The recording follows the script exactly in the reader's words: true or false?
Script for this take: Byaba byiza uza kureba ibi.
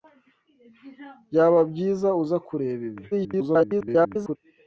false